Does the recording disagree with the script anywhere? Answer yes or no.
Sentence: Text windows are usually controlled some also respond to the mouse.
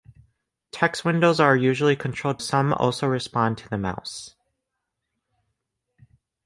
no